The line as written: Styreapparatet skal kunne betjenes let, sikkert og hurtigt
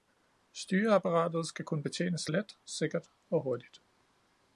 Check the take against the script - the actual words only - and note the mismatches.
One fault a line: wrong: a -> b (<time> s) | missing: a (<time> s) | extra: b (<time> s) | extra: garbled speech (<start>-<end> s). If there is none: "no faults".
no faults